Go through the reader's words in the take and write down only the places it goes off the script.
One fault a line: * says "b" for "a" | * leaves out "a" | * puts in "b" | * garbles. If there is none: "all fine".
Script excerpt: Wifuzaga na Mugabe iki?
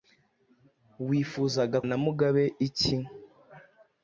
all fine